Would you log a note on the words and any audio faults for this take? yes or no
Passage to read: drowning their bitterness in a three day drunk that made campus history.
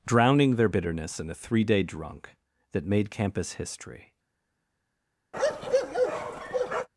yes